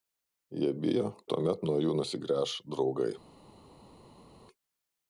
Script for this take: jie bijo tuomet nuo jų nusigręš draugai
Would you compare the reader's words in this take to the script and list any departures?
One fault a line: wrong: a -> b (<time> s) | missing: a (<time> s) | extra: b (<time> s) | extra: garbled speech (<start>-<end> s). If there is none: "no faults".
no faults